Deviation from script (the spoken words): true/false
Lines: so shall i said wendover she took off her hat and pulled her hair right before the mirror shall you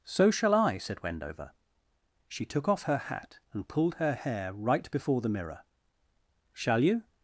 false